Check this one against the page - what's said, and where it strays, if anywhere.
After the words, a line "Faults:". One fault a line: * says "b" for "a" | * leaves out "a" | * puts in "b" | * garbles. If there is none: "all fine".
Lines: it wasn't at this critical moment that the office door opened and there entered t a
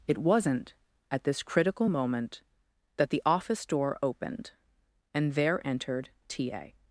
it wasn't at this critical moment that the office door opened and there entered t a
Faults:
all fine